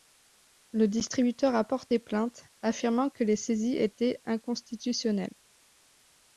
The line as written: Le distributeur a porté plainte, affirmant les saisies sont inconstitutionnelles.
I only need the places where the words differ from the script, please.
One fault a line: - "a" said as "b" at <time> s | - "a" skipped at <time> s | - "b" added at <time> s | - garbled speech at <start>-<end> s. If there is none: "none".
- "que" added at 3.1 s
- "sont" said as "étaient" at 3.7 s